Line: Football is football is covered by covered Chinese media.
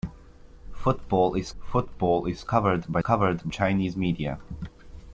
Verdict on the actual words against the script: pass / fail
pass